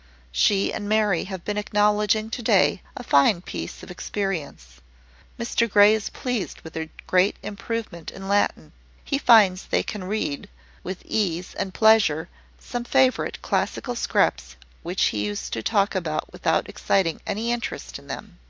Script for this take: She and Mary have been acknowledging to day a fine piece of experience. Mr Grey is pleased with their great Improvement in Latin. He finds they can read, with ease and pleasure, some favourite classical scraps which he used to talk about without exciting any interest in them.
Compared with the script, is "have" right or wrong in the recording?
right